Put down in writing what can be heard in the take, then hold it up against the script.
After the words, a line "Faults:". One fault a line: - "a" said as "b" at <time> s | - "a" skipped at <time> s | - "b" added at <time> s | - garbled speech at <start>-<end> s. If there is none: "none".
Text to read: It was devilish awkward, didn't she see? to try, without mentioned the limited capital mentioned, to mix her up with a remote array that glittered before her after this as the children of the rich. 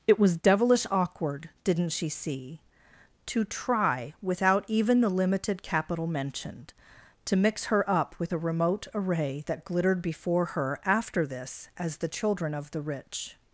It was devilish awkward, didn't she see? to try, without even the limited capital mentioned, to mix her up with a remote array that glittered before her after this as the children of the rich.
Faults:
- "mentioned" said as "even" at 4.7 s